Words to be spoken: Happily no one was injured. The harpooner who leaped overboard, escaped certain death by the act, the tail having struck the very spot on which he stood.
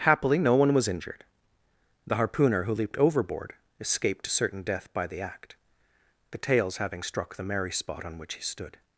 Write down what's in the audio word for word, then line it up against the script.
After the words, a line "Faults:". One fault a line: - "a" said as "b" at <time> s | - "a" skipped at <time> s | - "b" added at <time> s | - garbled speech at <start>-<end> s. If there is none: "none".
Happily no one was injured. The harpooner who leaped overboard, escaped certain death by the act, the tails having struck the merry spot on which he stood.
Faults:
- "tail" said as "tails" at 6.4 s
- "very" said as "merry" at 7.4 s